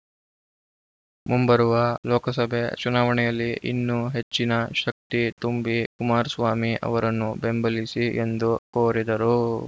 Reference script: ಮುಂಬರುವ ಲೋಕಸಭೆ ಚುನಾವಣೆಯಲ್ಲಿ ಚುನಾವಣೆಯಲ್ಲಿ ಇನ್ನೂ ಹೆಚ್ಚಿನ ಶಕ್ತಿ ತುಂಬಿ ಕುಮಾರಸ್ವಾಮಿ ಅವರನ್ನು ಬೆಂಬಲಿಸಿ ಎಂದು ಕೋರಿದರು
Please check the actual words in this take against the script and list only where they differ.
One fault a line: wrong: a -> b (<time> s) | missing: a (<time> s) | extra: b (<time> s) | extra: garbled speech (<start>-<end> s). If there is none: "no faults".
missing: ಚುನಾವಣೆಯಲ್ಲಿ (3.5 s)